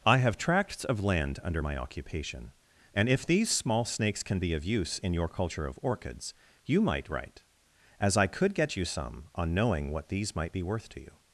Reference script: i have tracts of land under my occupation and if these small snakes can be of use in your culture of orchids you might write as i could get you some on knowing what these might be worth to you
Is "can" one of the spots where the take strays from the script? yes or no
no